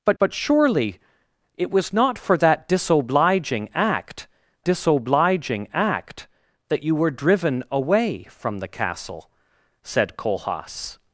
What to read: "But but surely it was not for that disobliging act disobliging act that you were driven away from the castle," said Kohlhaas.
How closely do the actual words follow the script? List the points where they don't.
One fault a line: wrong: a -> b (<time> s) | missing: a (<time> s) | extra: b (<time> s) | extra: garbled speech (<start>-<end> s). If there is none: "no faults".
no faults